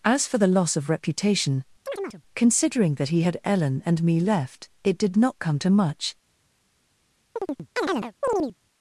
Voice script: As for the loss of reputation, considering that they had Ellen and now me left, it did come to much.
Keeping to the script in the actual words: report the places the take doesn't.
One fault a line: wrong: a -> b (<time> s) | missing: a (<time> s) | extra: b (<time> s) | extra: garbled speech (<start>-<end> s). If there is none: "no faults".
wrong: they -> he (3.1 s)
missing: now (4.0 s)
extra: not (5.2 s)